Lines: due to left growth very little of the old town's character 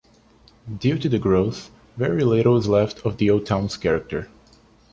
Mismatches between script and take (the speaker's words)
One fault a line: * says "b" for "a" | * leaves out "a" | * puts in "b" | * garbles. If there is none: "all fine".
* says "the" for "left"
* puts in "is left"